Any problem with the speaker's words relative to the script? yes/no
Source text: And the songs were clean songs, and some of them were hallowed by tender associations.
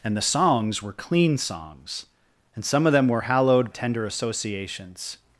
yes